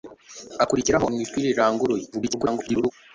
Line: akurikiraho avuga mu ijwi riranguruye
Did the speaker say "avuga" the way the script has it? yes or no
no